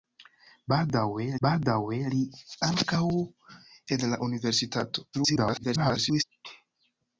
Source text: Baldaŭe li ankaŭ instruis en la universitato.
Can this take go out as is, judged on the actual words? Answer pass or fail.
fail